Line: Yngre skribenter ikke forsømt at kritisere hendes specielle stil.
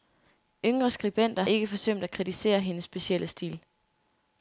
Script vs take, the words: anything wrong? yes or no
no